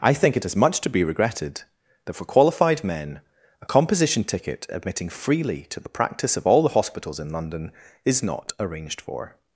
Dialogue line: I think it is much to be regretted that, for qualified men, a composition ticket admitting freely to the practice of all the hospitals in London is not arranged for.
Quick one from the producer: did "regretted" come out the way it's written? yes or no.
yes